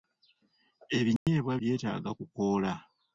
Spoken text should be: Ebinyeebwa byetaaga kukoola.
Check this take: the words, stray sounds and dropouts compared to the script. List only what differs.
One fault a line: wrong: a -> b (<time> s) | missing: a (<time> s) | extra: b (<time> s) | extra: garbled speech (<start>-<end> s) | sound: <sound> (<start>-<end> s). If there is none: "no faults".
sound: dropout (1.2-1.3 s)